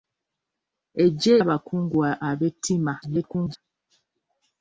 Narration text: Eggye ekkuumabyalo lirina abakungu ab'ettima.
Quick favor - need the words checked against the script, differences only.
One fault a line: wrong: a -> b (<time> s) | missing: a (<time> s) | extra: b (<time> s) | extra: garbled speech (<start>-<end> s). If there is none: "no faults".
missing: ekkuumabyalo lirina (1.3 s)
extra: garbled speech (3.0-3.6 s)